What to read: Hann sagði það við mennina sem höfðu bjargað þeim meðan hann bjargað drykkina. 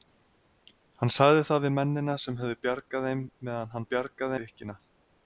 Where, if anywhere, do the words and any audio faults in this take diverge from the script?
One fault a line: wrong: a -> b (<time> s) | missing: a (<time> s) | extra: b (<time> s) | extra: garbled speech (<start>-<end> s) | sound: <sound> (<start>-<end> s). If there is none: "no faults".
no faults